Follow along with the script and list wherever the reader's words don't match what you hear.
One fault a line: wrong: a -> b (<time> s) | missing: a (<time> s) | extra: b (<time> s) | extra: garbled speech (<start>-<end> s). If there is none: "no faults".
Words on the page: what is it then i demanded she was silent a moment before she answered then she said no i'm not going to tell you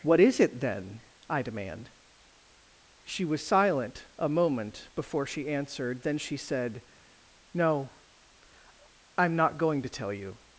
wrong: demanded -> demand (1.4 s)